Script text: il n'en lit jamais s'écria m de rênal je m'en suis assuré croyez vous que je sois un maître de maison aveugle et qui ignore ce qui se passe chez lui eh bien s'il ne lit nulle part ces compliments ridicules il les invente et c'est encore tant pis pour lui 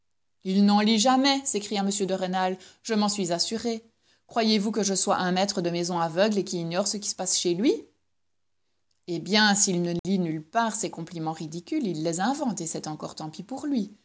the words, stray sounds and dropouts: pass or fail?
fail